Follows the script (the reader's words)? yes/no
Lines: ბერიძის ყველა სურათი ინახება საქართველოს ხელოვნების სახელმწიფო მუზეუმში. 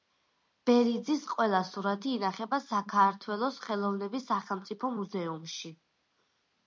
yes